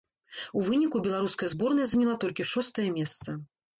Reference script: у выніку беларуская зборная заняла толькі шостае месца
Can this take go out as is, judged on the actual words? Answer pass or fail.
pass